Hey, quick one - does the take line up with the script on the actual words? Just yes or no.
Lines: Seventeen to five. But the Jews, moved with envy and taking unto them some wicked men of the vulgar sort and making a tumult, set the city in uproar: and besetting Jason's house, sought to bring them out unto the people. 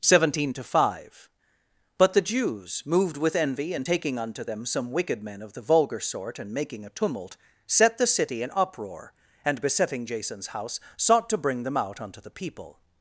yes